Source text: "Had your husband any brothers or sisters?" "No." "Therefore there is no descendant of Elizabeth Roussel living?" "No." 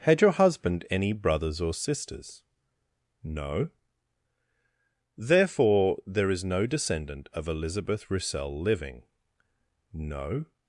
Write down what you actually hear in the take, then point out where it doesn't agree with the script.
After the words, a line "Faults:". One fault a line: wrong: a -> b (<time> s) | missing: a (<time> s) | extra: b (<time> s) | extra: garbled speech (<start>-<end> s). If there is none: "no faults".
"Had your husband any brothers or sisters?" "No." "Therefore there is no descendant of Elizabeth Roussel living?" "No."
Faults:
no faults